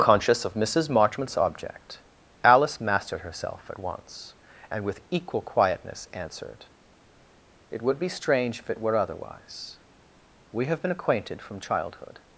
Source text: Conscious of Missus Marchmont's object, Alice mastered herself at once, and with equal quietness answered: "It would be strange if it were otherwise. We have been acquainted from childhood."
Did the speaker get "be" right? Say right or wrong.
right